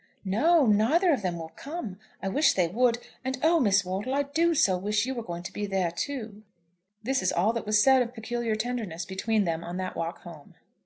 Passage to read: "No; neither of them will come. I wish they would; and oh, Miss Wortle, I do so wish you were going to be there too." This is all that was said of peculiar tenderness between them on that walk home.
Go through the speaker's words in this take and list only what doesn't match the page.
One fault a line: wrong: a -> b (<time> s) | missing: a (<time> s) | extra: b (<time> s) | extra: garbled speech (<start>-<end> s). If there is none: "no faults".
no faults